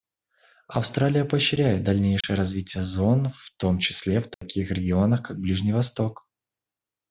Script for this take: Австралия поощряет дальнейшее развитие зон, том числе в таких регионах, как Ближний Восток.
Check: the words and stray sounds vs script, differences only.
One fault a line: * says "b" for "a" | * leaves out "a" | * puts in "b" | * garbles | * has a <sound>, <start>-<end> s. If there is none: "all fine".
* has a dropout, 2.2-2.2 s
* puts in "в"
* has a dropout, 4.3-4.4 s